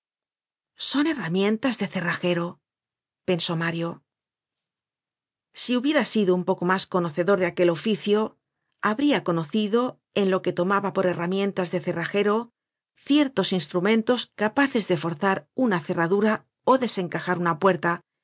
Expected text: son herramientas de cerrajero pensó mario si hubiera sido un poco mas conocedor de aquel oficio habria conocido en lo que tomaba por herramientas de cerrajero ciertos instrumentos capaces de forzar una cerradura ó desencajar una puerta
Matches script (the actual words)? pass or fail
pass